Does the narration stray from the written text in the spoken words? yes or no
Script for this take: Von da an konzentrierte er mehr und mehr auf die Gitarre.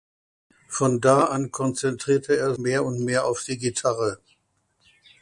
no